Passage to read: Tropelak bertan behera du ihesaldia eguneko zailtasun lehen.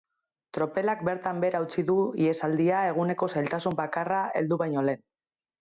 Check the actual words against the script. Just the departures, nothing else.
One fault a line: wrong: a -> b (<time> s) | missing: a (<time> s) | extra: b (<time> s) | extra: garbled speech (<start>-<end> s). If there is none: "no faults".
extra: utzi (1.7 s)
extra: bakarra heldu baino (3.8 s)